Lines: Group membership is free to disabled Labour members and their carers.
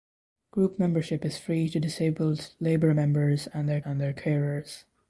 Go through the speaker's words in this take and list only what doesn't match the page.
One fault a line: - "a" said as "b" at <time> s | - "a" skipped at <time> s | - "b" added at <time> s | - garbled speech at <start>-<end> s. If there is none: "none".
- "and their" added at 3.8 s